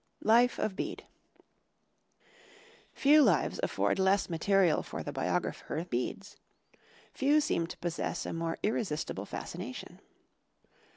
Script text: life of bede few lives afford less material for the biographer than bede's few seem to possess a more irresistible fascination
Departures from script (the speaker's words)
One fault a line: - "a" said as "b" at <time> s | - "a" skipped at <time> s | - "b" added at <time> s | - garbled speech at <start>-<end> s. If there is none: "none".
- "than" skipped at 5.8 s